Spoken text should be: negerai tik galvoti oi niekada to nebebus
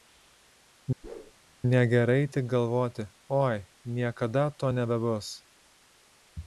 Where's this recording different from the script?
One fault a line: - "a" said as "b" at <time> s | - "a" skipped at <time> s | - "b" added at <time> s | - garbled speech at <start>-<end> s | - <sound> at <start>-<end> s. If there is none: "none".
- whoosh at 1.0-1.3 s